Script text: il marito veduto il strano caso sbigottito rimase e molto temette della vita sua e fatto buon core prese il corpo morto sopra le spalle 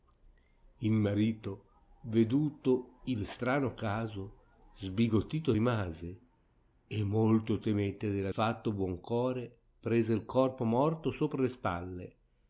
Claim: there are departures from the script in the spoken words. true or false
true